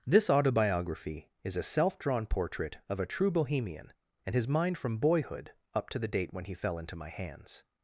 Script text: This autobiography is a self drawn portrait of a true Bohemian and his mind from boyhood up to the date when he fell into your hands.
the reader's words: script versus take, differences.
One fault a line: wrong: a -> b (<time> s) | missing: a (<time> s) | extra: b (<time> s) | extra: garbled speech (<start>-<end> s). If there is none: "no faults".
wrong: your -> my (7.0 s)